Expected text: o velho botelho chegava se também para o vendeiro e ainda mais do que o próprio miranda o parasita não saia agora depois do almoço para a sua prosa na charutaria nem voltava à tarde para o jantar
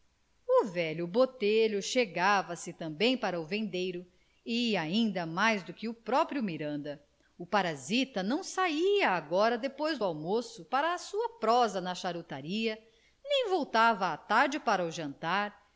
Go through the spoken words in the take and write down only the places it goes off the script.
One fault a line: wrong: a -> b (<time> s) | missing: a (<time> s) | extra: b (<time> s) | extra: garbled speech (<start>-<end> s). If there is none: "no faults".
no faults